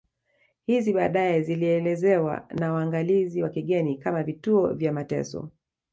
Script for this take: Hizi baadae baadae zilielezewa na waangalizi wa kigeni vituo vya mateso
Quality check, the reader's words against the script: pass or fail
fail